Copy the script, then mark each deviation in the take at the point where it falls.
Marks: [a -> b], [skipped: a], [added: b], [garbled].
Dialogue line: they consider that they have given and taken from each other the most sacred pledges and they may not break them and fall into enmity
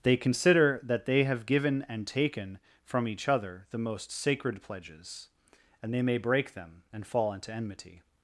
they consider that they have given and taken from each other the most sacred pledges and they may [skipped: not] break them and fall into enmity